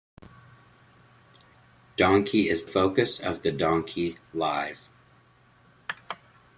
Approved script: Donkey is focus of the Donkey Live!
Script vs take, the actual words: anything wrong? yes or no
no